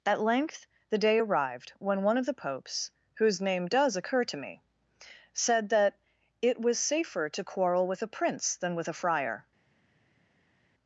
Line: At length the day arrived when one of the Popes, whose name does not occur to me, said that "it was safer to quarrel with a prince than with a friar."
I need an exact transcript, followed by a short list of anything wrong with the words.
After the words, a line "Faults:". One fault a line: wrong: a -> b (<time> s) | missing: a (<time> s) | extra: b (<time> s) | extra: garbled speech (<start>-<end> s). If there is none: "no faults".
At length the day arrived when one of the Popes, whose name does occur to me, said that "it was safer to quarrel with a prince than with a friar."
Faults:
missing: not (4.0 s)